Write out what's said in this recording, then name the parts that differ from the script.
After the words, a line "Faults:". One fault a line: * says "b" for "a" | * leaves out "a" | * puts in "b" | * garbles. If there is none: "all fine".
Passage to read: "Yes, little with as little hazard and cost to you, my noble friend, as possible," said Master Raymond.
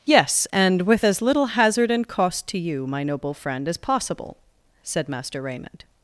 "Yes, and with as little hazard and cost to you, my noble friend, as possible," said Master Raymond.
Faults:
* says "and" for "little"